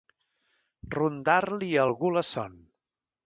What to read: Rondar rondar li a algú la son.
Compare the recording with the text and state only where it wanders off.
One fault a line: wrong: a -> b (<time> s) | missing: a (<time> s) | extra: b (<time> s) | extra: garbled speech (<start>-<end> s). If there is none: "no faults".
missing: rondar (1.4 s)